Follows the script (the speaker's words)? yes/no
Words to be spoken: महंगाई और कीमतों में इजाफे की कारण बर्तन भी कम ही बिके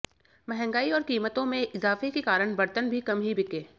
no